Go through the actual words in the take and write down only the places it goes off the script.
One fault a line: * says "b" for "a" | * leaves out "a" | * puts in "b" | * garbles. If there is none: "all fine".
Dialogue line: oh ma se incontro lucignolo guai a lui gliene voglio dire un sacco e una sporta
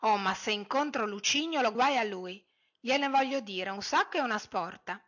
all fine